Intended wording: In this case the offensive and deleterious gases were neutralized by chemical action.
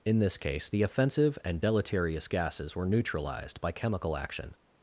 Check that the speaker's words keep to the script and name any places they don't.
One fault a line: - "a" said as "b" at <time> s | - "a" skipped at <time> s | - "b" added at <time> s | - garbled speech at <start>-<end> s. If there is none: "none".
none